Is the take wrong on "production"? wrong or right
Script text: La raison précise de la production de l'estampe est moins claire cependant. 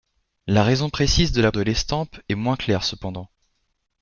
wrong